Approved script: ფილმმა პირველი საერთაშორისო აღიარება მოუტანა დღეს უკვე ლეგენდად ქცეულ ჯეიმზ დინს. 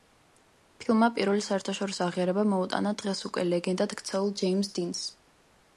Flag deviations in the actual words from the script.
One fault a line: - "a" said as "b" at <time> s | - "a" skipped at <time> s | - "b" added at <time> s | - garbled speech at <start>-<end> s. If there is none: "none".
none